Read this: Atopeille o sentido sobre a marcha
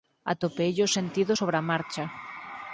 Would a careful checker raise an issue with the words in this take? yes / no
no